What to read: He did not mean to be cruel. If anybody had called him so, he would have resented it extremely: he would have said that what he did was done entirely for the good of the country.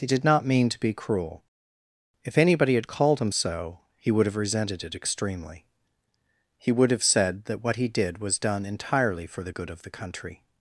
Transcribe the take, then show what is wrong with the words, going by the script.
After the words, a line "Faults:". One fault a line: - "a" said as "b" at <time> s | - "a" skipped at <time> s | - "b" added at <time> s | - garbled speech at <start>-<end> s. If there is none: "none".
He did not mean to be cruel. If anybody had called him so, he would have resented it extremely: he would have said that what he did was done entirely for the good of the country.
Faults:
none